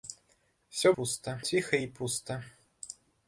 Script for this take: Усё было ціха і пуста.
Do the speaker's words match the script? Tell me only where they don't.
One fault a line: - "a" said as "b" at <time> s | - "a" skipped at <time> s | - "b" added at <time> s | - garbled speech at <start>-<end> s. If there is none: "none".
- "было" said as "пуста" at 1.0 s